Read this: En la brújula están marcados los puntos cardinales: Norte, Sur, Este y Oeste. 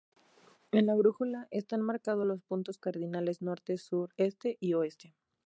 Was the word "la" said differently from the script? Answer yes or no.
no